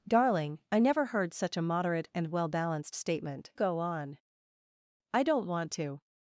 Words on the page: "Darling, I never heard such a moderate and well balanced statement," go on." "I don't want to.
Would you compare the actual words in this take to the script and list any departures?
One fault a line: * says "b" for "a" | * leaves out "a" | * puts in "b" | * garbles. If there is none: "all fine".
all fine